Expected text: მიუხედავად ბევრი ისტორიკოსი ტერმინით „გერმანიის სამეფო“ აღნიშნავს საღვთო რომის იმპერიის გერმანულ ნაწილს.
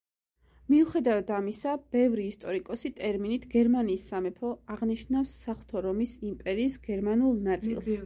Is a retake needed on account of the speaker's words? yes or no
yes